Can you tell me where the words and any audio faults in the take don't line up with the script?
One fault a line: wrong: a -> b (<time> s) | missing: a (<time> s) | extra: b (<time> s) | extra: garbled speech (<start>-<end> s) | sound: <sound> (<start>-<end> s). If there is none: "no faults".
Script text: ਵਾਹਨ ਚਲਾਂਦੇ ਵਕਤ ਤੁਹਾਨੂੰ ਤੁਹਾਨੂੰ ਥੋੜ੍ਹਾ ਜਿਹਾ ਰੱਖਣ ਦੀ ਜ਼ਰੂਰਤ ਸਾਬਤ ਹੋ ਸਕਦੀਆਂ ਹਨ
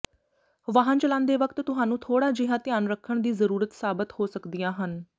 missing: ਤੁਹਾਨੂੰ (2.0 s)
extra: ਧਿਆਨ (2.6 s)